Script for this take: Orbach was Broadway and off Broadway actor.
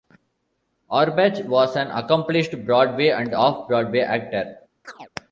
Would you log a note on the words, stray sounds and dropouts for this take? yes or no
yes